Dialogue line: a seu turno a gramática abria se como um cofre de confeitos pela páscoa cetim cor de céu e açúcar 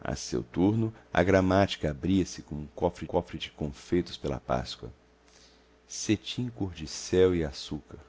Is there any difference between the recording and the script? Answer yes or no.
yes